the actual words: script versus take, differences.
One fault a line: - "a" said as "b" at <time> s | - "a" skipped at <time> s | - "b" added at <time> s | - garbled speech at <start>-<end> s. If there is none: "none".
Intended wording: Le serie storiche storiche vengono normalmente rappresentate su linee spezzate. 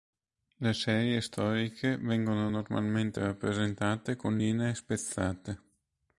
- "storiche" skipped at 1.9 s
- "su" said as "con" at 4.2 s